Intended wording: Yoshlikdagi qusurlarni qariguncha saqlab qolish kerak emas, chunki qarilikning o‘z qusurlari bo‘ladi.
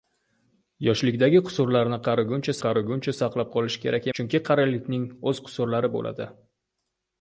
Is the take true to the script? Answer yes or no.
no